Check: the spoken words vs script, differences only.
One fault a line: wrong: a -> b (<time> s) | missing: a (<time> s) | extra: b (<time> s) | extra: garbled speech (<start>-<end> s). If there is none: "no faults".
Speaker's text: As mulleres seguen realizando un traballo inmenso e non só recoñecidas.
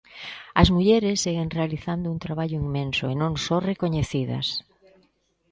no faults